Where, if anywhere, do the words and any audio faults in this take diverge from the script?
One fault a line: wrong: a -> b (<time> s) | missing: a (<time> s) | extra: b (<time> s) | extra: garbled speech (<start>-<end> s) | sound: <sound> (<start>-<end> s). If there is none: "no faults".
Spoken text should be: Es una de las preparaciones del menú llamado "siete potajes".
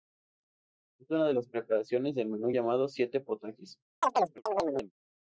sound: chirp (4.0-4.9 s)